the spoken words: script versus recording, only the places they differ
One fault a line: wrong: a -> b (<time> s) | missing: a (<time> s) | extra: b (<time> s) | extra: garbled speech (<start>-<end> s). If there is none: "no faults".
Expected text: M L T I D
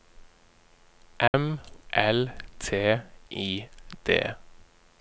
no faults